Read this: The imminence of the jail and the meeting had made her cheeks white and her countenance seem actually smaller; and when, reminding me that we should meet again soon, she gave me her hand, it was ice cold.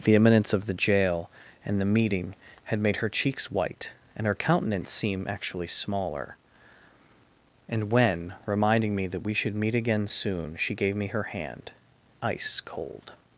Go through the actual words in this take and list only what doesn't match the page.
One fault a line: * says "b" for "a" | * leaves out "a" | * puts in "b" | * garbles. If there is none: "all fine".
* leaves out "it was"